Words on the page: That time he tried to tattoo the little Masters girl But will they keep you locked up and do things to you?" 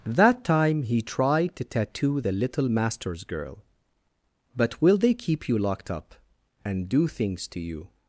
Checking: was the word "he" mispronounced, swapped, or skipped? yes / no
no